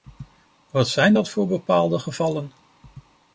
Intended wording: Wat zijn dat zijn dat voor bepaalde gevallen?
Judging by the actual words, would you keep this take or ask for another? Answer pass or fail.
fail